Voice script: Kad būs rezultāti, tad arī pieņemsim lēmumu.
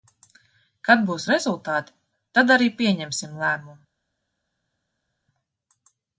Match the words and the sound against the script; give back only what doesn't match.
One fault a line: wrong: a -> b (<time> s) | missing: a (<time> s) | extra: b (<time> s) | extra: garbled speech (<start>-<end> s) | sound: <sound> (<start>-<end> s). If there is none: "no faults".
no faults